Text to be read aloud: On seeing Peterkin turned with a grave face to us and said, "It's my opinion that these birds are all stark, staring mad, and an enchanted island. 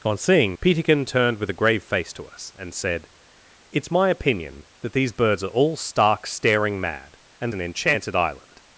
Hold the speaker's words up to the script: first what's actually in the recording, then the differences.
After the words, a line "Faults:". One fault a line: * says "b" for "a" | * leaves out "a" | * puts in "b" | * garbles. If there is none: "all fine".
On seeing Peterkin turned with a grave face to us and said, "It's my opinion that these birds are all stark, staring mad, and an enchanted island.
Faults:
all fine